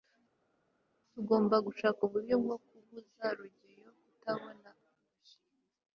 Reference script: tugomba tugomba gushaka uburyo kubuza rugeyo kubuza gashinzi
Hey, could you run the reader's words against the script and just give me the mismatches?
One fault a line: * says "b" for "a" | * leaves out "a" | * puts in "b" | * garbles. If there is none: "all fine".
* leaves out "tugomba"
* puts in "bwo"
* says "kutabona" for "kubuza"